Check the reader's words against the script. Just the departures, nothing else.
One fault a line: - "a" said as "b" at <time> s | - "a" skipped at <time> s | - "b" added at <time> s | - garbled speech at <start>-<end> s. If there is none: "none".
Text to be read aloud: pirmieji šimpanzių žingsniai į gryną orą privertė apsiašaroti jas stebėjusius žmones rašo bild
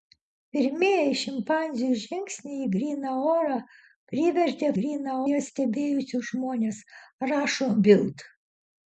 - "apsiašaroti" said as "gryną" at 4.8 s